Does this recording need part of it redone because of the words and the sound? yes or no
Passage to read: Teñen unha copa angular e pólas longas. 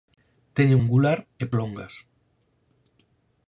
yes